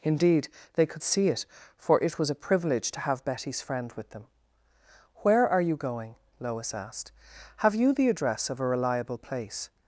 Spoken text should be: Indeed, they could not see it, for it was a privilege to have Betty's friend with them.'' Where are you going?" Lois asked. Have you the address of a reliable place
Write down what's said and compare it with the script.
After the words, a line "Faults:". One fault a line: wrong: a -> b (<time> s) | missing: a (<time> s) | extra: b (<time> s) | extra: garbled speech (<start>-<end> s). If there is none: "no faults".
Indeed, they could see it, for it was a privilege to have Betty's friend with them.'' Where are you going?" Lois asked. Have you the address of a reliable place
Faults:
missing: not (1.0 s)